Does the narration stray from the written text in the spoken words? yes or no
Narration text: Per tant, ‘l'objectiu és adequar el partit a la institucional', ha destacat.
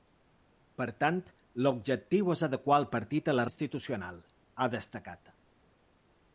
no